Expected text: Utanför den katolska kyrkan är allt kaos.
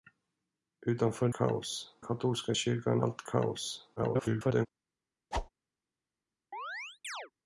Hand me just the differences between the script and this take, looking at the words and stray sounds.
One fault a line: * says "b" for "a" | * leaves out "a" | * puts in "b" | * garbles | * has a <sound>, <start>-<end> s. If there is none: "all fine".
* says "kaos" for "den"
* leaves out "är"
* garbles
* has a whoosh, 5.3-5.5 s
* has a chirp, 6.5-7.3 s